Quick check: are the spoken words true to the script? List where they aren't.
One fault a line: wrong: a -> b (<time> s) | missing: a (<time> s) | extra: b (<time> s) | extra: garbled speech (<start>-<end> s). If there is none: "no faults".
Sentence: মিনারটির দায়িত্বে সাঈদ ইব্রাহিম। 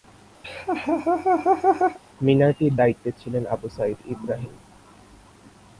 extra: ছিলেন আবু (3.2 s)